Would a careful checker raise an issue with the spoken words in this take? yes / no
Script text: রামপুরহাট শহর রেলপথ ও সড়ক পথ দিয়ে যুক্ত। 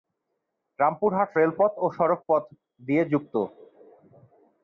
yes